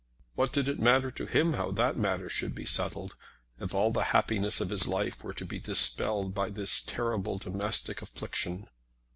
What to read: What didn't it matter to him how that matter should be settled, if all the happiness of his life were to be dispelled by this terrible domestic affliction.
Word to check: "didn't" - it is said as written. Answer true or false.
false